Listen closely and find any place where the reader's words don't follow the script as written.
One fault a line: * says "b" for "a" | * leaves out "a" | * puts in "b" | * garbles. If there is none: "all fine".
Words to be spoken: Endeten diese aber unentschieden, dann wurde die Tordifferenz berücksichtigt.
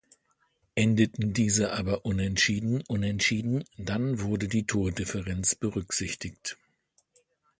* puts in "unentschieden"